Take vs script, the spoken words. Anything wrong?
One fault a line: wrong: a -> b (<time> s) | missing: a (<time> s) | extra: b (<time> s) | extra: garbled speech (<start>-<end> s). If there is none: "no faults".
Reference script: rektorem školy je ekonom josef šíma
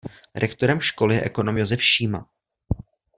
no faults